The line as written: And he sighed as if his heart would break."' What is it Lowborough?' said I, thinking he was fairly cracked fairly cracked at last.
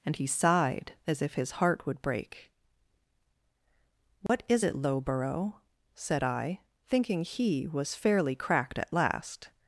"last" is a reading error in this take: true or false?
false